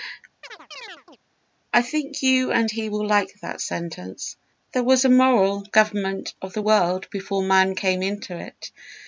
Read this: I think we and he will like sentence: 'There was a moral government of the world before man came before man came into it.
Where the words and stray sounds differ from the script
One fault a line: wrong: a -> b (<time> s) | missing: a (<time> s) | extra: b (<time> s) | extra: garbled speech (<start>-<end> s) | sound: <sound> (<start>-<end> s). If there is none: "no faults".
sound: chirp (0.4-1.2 s)
wrong: we -> you (2.2 s)
extra: that (3.4 s)
missing: before man came (8.0 s)